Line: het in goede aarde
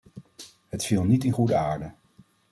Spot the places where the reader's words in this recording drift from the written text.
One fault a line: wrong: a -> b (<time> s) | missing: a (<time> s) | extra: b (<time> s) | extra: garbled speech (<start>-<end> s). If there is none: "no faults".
extra: viel niet (0.8 s)